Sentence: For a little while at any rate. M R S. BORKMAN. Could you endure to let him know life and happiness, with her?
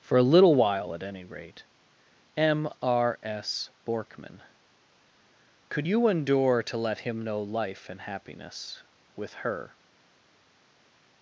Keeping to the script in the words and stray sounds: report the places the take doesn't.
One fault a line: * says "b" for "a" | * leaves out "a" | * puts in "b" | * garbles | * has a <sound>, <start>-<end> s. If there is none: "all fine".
all fine